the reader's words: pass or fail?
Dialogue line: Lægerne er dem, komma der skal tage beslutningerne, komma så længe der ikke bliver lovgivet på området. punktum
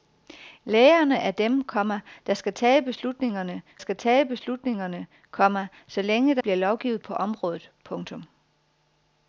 fail